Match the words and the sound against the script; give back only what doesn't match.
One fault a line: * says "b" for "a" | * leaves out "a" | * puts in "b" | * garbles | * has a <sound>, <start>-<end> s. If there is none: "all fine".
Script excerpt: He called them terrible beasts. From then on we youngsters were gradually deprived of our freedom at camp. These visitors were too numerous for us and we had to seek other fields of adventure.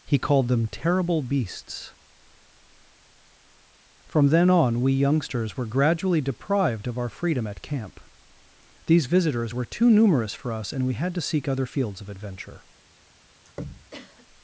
* has a throat clearing, 13.4-14.3 s